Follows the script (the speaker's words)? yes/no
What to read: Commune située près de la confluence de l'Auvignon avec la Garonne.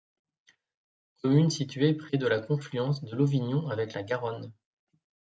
yes